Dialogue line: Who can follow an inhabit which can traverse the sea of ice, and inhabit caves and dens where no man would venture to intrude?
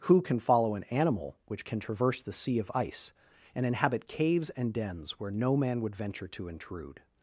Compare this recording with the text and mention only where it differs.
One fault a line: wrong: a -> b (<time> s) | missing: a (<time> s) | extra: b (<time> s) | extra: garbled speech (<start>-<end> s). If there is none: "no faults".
wrong: inhabit -> animal (0.8 s)